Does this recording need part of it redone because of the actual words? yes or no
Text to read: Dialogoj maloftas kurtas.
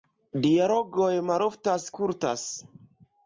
no